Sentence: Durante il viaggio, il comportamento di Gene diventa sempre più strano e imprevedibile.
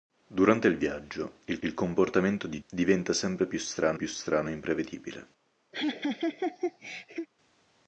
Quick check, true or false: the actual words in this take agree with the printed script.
false